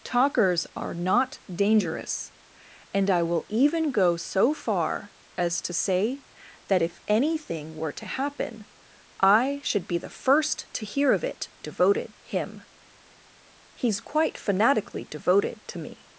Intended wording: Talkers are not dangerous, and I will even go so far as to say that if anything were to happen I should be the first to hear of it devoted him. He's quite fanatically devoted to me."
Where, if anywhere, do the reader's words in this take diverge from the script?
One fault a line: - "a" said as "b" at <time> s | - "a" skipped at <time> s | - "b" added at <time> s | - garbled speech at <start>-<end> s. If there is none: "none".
none